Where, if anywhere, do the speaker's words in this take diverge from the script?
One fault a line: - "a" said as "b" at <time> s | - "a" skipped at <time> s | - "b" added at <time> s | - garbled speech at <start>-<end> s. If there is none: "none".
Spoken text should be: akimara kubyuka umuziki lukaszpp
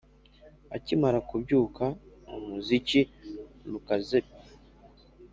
none